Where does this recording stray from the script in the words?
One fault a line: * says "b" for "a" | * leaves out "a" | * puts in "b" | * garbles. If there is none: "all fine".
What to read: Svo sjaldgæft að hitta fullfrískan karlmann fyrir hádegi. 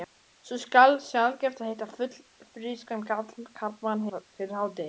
all fine